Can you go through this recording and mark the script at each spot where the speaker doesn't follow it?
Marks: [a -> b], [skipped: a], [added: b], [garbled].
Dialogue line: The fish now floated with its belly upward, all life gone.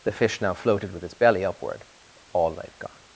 The fish now floated with its belly upward, all life gone.